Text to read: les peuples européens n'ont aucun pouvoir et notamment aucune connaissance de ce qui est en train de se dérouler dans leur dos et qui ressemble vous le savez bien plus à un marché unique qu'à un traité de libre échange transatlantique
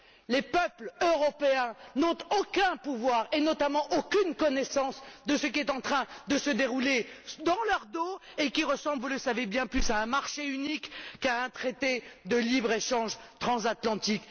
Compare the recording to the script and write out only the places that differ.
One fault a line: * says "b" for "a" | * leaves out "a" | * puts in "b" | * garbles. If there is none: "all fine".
all fine